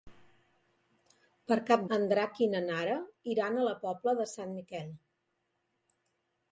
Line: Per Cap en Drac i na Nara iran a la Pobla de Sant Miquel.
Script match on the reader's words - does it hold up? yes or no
yes